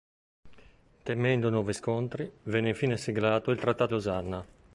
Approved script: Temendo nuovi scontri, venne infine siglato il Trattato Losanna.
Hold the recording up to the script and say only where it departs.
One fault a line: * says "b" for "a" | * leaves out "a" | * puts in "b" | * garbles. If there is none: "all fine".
all fine